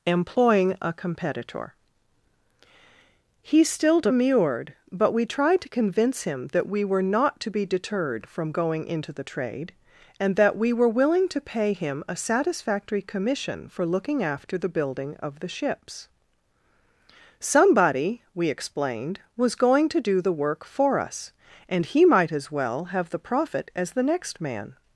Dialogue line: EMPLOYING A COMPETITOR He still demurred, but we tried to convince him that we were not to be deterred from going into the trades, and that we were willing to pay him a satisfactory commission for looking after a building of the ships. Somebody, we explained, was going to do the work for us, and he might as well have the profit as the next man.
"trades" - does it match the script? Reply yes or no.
no